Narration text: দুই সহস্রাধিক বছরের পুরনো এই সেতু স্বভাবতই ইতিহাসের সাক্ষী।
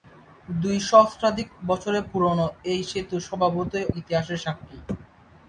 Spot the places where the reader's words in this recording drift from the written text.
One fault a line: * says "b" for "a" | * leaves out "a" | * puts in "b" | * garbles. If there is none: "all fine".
all fine